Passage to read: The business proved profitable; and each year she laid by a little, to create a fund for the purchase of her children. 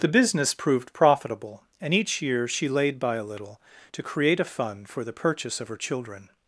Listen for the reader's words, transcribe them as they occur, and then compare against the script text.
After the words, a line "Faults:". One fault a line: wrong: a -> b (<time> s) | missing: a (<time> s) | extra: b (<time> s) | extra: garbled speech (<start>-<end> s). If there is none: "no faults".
The business proved profitable; and each year she laid by a little, to create a fund for the purchase of her children.
Faults:
no faults